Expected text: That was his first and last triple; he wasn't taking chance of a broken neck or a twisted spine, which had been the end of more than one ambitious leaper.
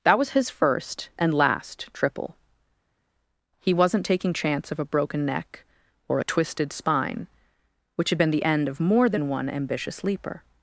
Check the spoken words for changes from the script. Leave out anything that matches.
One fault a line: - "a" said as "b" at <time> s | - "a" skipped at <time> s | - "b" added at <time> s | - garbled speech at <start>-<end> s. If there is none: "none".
none